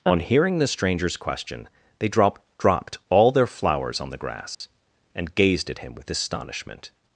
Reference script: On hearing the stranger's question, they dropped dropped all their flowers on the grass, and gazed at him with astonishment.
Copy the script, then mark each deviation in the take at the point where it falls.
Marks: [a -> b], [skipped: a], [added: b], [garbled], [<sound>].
On hearing the stranger's question, they dropped dropped all their flowers on the grass, [dropout] and gazed at him with astonishment.